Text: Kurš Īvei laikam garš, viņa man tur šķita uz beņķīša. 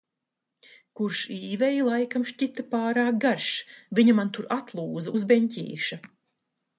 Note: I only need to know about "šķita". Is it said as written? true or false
false